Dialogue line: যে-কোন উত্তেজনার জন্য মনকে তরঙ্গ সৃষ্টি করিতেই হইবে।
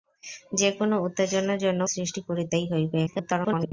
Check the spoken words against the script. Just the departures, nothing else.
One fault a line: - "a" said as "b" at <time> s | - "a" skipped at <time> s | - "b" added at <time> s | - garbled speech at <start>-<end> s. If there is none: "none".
- "মনকে তরঙ্গ" skipped at 1.8 s
- garbled speech at 3.1-3.7 s